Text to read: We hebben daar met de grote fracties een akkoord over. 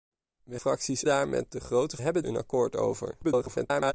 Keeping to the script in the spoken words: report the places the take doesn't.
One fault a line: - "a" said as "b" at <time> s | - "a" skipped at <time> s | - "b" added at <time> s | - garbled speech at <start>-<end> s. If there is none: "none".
- "hebben" said as "fracties" at 0.5 s
- "fracties" said as "hebben" at 2.0 s
- garbled speech at 3.2-3.9 s